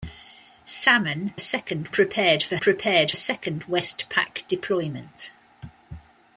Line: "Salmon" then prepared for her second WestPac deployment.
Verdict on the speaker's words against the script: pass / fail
fail